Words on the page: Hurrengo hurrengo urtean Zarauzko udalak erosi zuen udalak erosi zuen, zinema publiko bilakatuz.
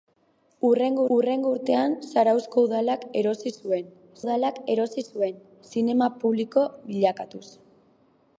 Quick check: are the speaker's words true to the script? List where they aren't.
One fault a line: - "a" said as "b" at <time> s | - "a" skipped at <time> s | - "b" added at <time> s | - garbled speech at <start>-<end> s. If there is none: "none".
none